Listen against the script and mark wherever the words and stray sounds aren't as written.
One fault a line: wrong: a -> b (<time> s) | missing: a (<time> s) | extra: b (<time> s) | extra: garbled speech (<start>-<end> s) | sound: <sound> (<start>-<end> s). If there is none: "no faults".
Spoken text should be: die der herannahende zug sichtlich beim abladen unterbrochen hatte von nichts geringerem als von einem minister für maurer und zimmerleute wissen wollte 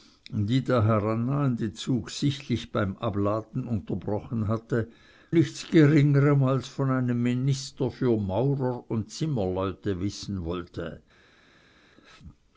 missing: von (4.9 s)